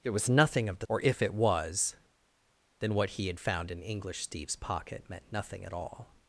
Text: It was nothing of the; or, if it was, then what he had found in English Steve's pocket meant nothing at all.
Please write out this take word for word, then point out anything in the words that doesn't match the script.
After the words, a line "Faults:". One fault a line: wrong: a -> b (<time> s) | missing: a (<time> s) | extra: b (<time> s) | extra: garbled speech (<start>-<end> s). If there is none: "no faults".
It was nothing of the; or, if it was, then what he had found in English Steve's pocket meant nothing at all.
Faults:
no faults